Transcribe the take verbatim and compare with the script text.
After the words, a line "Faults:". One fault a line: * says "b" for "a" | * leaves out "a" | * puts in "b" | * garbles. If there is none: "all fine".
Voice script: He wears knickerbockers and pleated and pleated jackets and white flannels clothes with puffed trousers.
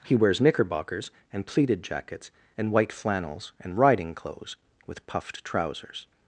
He wears knickerbockers and pleated jackets and white flannels and riding clothes with puffed trousers.
Faults:
* leaves out "and pleated"
* puts in "and riding"